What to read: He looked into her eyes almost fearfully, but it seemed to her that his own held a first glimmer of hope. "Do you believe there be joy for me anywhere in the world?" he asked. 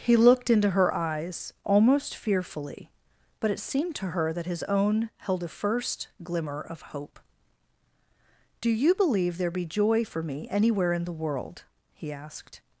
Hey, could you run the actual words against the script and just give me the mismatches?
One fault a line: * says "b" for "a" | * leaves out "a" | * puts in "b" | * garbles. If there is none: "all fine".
all fine